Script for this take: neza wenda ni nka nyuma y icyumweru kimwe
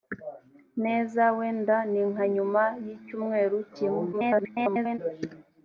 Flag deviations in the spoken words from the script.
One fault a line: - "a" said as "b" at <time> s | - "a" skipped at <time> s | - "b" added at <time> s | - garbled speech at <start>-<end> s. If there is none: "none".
- garbled speech at 4.1-5.0 s